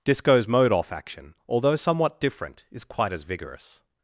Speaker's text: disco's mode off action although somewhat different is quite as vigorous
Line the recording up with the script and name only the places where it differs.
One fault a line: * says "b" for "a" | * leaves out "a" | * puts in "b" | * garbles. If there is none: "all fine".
all fine